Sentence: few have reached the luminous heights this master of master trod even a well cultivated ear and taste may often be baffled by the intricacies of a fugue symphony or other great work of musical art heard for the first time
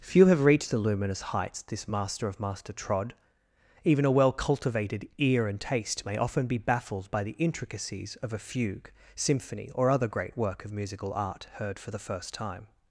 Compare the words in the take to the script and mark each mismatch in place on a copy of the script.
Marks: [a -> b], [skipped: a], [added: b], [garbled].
few have reached the luminous heights this master of master trod even a well cultivated ear and taste may often be baffled by the intricacies of a fugue symphony or other great work of musical art heard for the first time